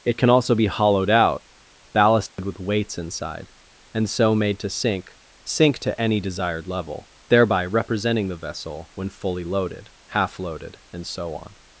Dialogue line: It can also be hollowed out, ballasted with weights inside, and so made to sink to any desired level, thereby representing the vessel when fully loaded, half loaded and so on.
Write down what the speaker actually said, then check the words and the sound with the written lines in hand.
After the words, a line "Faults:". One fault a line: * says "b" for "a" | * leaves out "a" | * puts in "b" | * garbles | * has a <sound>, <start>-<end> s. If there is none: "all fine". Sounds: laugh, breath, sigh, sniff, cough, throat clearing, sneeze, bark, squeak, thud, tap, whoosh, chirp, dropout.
It can also be hollowed out, ballasted with weights inside, and so made to sink sink to any desired level, thereby representing the vessel when fully loaded, half loaded and so on.
Faults:
* has a dropout, 2.3-2.4 s
* puts in "sink"